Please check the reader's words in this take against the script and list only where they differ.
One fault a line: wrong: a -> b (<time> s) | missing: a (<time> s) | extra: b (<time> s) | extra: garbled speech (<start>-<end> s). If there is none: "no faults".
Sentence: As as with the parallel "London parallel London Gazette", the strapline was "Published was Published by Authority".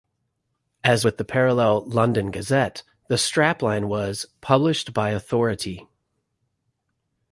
missing: as (1.1 s)
missing: parallel London (2.3 s)
missing: was Published (4.9 s)